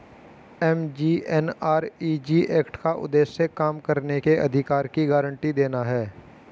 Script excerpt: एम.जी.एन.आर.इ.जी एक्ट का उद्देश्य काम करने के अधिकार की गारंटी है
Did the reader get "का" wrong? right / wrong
right